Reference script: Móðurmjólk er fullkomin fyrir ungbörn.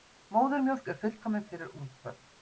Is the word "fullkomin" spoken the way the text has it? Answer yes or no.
yes